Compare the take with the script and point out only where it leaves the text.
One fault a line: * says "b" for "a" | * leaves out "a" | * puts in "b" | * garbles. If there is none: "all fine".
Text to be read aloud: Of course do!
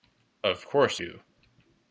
all fine